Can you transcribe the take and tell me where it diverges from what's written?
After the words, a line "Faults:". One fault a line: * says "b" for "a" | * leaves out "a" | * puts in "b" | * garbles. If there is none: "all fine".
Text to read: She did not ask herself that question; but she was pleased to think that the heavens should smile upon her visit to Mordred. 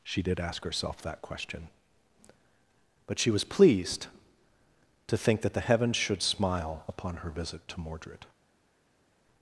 She did ask herself that question; but she was pleased to think that the heavens should smile upon her visit to Mordred.
Faults:
* leaves out "not"